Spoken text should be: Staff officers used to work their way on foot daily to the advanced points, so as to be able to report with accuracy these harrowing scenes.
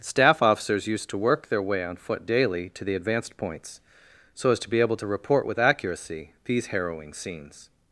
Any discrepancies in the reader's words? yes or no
no